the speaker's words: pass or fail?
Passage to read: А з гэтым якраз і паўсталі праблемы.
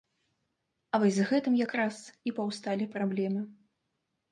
fail